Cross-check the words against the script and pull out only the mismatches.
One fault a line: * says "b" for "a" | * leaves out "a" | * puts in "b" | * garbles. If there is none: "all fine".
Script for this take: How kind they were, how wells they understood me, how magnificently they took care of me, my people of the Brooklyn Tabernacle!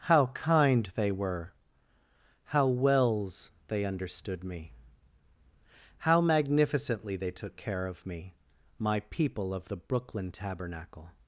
all fine